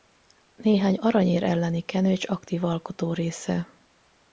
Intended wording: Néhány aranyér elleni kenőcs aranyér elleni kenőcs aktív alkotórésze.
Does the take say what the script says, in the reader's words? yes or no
no